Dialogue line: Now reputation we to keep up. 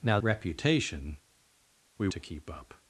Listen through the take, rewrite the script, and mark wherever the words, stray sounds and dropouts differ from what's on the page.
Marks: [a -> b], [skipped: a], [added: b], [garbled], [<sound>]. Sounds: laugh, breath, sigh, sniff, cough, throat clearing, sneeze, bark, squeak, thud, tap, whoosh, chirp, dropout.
Now reputation we to keep up.